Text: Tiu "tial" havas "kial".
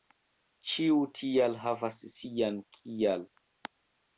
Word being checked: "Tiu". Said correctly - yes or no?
no